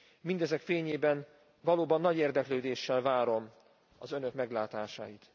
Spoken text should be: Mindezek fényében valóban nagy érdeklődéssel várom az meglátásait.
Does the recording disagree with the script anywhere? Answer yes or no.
yes